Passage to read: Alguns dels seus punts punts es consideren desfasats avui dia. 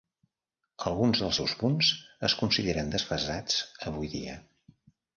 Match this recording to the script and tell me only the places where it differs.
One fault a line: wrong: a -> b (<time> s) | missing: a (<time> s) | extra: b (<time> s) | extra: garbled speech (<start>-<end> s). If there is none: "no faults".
missing: punts (1.9 s)